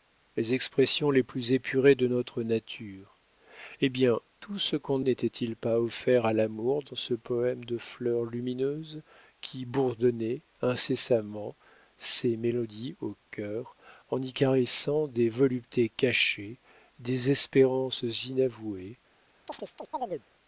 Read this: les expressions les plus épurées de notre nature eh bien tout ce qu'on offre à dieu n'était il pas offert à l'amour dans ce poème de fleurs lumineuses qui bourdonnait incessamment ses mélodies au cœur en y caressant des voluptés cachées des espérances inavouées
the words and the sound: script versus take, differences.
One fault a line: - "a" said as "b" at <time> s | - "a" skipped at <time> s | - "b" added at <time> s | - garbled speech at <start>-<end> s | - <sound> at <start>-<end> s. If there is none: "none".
- "offre à dieu" skipped at 5.0 s
- chirp at 19.5-20.2 s